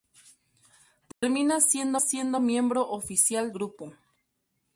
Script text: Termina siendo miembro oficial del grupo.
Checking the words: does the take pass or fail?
fail